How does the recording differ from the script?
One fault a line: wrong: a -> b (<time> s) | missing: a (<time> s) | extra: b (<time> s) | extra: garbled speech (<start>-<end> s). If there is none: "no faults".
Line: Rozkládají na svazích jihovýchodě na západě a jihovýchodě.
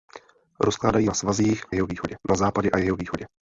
no faults